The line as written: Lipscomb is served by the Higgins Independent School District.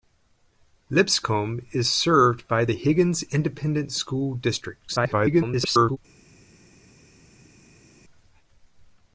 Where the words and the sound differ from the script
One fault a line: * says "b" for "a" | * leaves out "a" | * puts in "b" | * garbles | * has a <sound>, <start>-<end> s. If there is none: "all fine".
* garbles